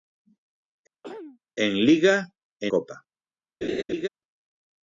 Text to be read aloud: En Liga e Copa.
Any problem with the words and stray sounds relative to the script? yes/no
yes